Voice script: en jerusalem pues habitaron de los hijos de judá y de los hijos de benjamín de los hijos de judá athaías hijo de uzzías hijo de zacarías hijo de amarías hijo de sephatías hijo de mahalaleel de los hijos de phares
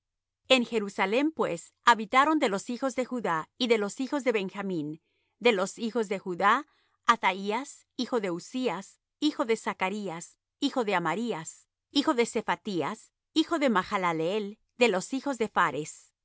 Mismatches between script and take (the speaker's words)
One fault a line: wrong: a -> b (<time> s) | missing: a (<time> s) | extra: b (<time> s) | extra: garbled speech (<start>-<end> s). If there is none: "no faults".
no faults